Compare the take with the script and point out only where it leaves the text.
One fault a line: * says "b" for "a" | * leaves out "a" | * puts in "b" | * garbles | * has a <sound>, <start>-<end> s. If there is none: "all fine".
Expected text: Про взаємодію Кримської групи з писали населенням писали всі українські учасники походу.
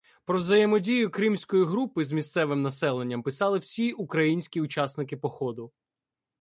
* says "місцевим" for "писали"